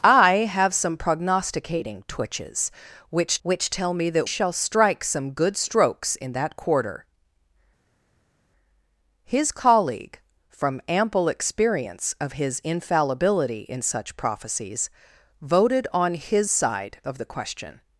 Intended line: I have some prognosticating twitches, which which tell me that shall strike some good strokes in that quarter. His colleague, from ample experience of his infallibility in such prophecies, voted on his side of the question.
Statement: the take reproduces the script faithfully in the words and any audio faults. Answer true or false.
true